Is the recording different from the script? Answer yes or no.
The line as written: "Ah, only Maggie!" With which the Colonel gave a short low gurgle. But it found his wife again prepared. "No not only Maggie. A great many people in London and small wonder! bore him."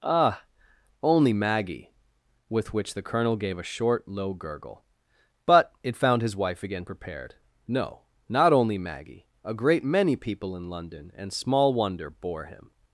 no